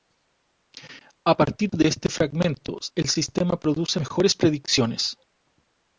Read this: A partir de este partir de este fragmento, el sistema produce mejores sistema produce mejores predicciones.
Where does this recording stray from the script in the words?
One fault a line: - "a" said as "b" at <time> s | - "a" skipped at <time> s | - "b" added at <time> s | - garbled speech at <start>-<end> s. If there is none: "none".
- "partir de este" skipped at 2.1 s
- "sistema produce mejores" skipped at 4.4 s